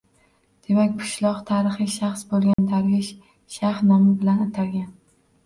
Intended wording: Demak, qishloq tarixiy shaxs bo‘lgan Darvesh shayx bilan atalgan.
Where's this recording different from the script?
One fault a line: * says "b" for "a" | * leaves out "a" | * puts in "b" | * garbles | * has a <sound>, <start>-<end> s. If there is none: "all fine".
* has a dropout, 2.5-2.6 s
* puts in "nomi"